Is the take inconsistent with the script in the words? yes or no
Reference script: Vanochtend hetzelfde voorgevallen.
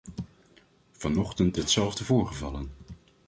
no